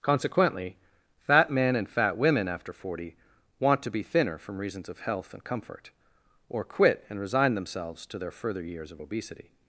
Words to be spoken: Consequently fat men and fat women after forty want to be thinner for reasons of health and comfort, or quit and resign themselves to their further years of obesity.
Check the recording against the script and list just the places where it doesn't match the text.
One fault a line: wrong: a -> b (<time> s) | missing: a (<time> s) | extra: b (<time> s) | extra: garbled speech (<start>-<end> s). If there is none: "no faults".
wrong: for -> from (4.4 s)